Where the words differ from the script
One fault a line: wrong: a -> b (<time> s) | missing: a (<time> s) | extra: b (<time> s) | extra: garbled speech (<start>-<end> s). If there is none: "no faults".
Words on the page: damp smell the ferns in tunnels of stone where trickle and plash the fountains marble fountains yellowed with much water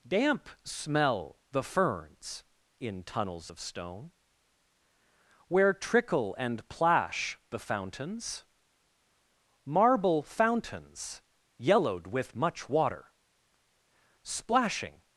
extra: splashing (14.2 s)